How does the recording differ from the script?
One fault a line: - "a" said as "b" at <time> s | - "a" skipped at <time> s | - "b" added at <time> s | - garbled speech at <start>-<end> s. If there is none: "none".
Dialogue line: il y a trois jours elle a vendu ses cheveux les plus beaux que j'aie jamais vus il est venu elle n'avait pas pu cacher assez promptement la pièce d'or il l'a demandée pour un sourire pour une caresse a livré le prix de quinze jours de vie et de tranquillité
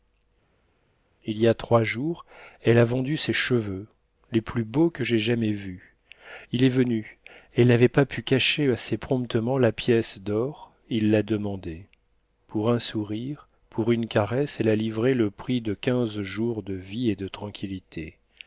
- "elle" added at 14.6 s